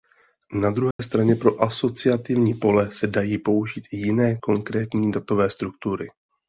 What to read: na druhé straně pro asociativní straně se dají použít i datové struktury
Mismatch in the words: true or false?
true